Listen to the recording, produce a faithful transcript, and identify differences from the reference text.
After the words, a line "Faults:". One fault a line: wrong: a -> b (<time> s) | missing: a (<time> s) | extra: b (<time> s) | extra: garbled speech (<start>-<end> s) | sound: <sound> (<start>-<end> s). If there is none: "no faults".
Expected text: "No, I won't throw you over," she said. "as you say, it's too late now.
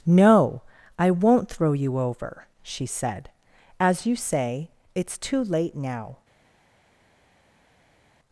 "No, I won't throw you over," she said. "as you say, it's too late now.
Faults:
no faults